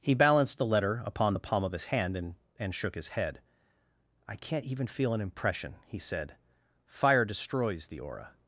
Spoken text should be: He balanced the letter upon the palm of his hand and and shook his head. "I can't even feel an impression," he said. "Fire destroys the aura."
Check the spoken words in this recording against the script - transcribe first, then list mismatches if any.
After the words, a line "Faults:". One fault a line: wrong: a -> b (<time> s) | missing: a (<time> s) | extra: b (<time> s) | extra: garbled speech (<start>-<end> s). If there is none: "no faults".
He balanced the letter upon the palm of his hand and and shook his head. "I can't even feel an impression," he said. "Fire destroys the aura."
Faults:
no faults